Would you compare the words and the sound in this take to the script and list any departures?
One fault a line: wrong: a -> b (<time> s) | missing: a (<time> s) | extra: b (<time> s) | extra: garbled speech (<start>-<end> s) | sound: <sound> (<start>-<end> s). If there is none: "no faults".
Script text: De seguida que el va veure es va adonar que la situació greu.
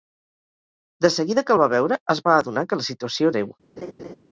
sound: laugh (3.8-4.1 s)